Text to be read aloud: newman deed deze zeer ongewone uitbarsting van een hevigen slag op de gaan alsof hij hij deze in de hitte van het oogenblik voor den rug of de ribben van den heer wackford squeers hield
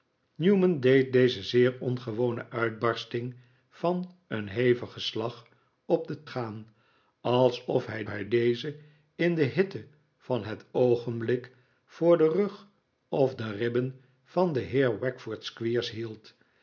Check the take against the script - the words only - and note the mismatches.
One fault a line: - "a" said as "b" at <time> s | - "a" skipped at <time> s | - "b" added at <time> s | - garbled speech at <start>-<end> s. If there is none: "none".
none